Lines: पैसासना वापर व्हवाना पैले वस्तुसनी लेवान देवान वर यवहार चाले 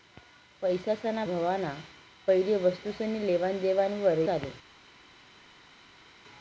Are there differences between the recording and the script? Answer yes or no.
yes